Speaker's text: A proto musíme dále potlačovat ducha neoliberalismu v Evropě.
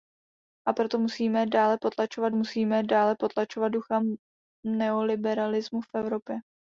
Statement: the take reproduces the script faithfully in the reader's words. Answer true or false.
false